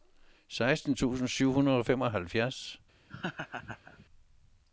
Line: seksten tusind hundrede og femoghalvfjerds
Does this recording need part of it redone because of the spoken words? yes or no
yes